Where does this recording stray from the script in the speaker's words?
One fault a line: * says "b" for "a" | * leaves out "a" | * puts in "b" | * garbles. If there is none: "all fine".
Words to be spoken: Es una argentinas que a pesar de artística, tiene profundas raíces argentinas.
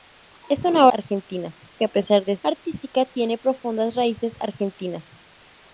all fine